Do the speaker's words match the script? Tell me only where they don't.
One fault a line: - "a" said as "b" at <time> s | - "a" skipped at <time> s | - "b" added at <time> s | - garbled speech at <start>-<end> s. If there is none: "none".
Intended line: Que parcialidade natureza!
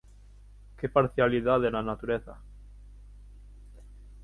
- "na" added at 1.7 s